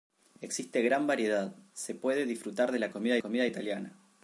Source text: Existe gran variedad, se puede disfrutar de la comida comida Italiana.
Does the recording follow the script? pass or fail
pass